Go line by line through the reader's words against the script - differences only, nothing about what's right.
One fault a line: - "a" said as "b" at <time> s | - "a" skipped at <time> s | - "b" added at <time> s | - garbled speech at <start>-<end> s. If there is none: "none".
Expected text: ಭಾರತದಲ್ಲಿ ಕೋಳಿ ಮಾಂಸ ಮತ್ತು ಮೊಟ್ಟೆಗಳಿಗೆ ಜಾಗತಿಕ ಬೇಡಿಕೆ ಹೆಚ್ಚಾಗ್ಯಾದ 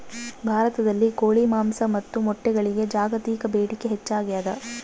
none